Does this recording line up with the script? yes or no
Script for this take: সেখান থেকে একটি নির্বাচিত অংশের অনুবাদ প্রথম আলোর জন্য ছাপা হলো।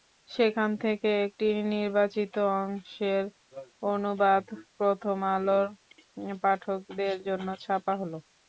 no